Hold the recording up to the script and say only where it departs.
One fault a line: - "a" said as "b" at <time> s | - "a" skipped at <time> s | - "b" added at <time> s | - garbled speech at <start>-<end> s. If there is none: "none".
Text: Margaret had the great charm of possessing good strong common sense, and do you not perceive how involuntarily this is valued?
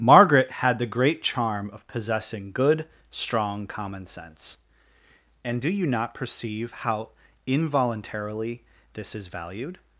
none